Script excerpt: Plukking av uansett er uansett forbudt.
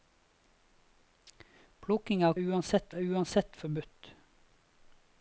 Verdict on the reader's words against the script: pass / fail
pass